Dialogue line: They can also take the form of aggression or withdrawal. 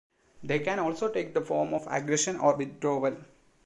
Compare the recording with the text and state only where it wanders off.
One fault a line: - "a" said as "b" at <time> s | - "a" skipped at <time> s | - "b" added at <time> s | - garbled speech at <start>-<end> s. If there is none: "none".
none